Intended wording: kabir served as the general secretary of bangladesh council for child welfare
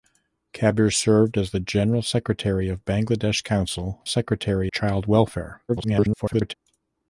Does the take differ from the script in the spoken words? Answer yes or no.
yes